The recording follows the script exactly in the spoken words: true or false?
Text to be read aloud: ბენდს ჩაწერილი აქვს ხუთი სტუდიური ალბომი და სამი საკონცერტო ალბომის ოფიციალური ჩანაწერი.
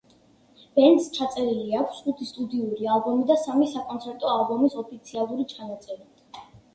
true